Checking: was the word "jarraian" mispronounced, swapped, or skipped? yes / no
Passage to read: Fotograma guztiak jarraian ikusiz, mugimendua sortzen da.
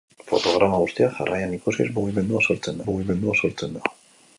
no